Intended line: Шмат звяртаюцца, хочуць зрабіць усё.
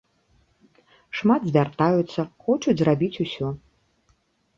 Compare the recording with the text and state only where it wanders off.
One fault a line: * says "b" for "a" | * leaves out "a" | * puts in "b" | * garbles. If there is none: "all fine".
all fine